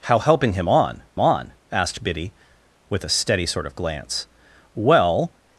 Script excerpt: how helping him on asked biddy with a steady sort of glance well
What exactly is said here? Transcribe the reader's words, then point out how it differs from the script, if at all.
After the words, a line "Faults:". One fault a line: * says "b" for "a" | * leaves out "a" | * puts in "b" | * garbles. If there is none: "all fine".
how helping him on on asked biddy with a steady sort of glance well
Faults:
* puts in "on"